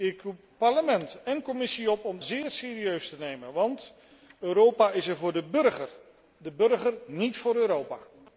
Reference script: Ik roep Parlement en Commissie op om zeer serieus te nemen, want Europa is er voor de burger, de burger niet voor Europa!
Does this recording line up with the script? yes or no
yes